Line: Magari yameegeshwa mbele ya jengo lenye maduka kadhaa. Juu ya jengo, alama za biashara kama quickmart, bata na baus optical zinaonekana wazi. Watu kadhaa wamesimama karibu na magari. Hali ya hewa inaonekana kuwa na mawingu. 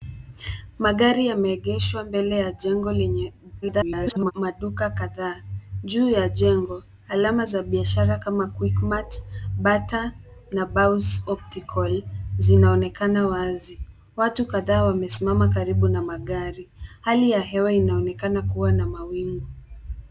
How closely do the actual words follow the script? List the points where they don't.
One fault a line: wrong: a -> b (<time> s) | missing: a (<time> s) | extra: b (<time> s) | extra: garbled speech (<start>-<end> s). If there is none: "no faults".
extra: garbled speech (3.6-4.3 s)